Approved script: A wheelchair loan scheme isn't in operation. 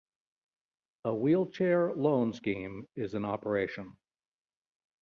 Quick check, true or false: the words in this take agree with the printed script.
false